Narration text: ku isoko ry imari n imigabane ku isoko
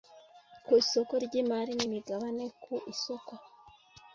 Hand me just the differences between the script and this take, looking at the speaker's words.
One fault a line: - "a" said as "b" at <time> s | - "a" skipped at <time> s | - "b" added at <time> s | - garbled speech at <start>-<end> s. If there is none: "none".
none